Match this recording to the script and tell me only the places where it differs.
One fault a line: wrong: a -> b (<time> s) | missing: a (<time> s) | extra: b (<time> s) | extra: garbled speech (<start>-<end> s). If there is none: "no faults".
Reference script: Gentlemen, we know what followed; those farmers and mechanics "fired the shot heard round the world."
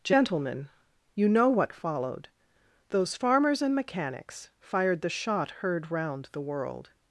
wrong: we -> you (1.1 s)